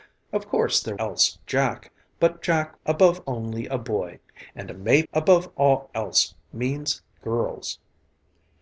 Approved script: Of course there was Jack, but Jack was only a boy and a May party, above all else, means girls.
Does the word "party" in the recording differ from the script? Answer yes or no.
yes